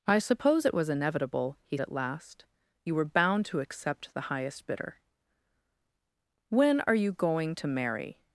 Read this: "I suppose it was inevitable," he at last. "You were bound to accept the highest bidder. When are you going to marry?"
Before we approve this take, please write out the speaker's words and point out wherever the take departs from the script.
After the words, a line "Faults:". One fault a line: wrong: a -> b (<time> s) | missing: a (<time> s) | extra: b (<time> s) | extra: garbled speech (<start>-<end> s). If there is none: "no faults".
"I suppose it was inevitable," he at last. "You were bound to accept the highest bidder. When are you going to marry?"
Faults:
no faults